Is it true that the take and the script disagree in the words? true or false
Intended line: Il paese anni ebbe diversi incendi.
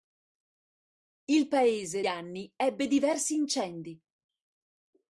false